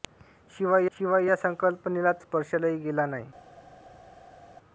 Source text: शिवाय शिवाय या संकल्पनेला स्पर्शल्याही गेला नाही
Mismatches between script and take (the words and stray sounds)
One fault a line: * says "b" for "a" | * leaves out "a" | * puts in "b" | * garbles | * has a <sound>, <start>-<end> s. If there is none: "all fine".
all fine